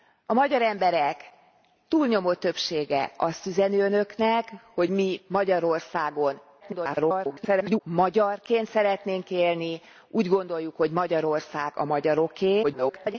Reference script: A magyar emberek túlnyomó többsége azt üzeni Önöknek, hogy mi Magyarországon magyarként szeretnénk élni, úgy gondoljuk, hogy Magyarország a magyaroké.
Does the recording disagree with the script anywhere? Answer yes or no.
yes